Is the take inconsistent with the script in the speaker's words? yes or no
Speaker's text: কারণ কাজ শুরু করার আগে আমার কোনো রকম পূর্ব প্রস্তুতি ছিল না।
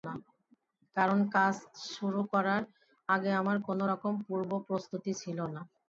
no